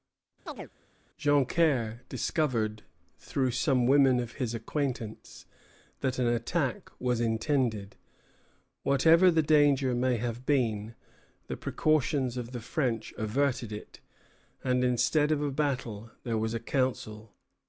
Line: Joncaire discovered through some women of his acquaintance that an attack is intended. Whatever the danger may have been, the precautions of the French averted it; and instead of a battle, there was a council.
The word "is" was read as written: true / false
false